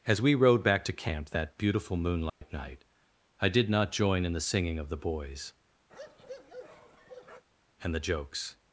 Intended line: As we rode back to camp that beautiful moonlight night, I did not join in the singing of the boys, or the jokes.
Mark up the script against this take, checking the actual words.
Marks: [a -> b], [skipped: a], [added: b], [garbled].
As we rode back to camp that beautiful moonlight night, I did not join in the singing of the boys, [or -> and] the jokes.